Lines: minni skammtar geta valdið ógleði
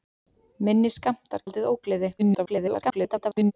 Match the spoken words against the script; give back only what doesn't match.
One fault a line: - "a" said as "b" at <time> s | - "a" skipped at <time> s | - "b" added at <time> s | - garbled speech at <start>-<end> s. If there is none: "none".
- "geta" skipped at 1.5 s
- garbled speech at 2.2-3.5 s